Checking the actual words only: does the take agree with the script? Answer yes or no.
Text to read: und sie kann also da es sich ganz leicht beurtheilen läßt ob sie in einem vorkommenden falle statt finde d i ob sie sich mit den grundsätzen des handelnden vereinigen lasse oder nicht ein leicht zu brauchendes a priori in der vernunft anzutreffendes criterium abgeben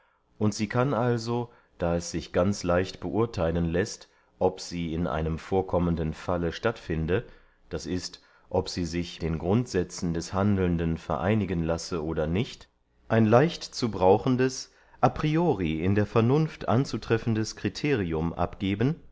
no